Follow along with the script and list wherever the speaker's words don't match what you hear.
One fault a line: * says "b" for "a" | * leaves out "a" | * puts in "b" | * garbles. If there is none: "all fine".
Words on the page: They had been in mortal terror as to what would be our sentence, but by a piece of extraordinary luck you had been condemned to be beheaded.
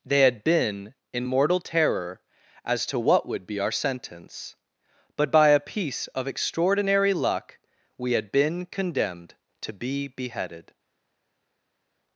* says "we" for "you"